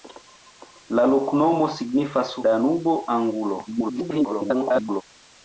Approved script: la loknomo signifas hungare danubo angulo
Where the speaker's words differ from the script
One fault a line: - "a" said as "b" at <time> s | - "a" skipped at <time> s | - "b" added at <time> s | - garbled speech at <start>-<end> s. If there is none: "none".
- "hungare" skipped at 2.3 s
- garbled speech at 3.7-5.0 s